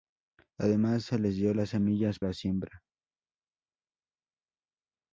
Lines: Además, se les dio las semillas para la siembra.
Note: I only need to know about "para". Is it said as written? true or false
false